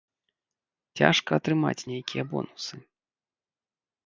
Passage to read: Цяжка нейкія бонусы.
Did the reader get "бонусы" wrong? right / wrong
right